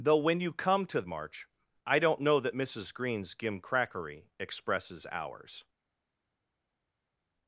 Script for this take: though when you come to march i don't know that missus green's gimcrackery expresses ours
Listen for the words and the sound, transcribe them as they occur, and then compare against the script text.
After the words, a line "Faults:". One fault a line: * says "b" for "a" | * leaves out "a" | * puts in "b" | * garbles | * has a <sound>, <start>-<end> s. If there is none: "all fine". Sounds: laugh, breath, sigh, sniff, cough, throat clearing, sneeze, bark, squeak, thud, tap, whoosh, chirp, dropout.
though when you come to march i don't know that missus green's gimcrackery expresses ours
Faults:
all fine